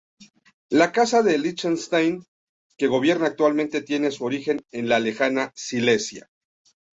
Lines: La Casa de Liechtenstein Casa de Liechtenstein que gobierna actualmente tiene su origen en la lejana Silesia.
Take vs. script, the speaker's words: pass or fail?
fail